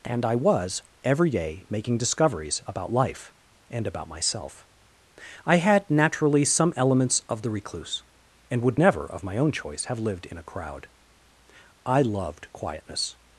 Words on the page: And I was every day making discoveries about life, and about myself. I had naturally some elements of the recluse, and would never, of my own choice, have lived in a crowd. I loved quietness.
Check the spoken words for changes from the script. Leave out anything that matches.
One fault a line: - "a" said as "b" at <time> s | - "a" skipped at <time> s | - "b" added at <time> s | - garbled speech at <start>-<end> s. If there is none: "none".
none